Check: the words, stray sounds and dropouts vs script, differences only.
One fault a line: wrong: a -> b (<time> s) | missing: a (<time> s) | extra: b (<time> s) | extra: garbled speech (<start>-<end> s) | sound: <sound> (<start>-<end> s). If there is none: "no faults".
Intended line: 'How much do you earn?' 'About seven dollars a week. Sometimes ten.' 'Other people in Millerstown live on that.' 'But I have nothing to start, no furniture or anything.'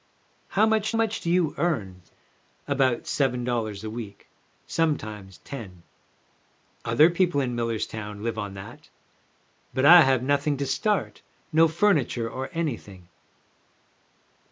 extra: much (0.9 s)